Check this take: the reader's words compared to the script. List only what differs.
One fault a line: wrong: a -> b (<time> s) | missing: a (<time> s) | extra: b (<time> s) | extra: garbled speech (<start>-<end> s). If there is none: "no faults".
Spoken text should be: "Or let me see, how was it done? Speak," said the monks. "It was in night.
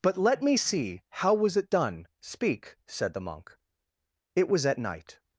wrong: Or -> But (0.0 s)
wrong: monks -> monk (3.3 s)
wrong: in -> at (4.6 s)